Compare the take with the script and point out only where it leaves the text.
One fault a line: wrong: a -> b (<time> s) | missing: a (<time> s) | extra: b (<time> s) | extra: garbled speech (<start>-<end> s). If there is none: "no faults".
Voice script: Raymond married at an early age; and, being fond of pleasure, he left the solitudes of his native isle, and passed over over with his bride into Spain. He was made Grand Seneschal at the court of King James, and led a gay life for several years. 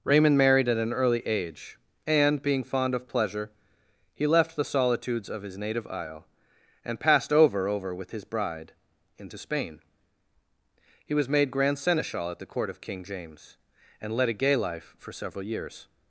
no faults